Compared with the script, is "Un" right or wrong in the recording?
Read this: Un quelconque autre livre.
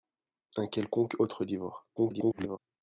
right